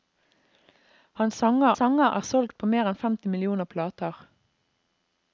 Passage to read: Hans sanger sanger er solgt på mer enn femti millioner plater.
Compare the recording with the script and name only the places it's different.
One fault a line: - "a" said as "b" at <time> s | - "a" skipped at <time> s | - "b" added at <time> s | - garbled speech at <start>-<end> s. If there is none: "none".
none